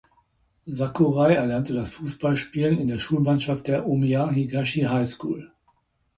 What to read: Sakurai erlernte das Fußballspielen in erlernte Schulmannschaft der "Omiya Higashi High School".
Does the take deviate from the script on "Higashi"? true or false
false